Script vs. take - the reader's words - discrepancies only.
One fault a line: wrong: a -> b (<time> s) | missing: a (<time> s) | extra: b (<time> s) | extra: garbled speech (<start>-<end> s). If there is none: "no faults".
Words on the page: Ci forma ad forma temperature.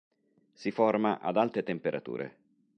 wrong: Ci -> Si (0.5 s)
wrong: forma -> alte (1.4 s)